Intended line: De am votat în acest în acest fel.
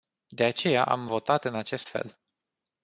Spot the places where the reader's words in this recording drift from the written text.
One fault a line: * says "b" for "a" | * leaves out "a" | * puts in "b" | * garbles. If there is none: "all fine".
* puts in "aceea"
* leaves out "în acest"